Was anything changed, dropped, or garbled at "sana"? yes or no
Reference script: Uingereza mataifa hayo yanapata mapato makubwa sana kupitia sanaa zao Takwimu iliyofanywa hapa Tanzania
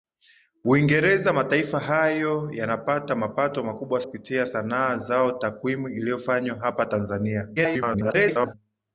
yes